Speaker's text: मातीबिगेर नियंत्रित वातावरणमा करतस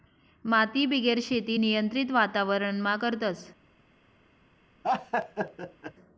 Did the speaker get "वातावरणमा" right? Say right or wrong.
right